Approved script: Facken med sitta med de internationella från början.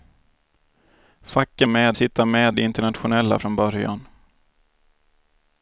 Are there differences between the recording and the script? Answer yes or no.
no